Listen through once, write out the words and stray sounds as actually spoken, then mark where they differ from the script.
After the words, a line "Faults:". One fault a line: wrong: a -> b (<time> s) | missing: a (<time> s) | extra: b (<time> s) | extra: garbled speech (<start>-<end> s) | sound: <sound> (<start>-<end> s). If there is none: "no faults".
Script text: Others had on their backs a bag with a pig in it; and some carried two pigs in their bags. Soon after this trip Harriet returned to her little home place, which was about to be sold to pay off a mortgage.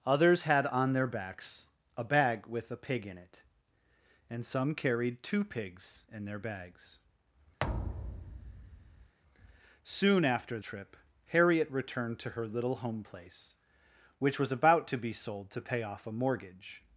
Others had on their backs a bag with a pig in it; and some carried two pigs in their bags. Soon after trip Harriet returned to her little home place, which was about to be sold to pay off a mortgage.
Faults:
sound: thud (7.6-9.1 s)
missing: this (10.6 s)